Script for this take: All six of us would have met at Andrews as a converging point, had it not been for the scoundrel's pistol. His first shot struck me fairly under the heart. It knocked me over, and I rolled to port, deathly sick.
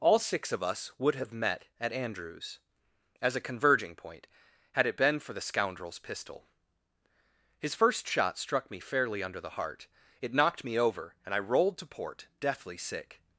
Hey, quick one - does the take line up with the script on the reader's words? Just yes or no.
no